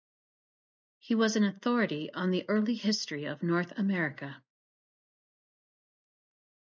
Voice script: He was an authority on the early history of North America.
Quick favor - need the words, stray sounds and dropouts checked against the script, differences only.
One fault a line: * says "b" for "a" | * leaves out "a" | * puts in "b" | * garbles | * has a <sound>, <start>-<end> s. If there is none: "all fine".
all fine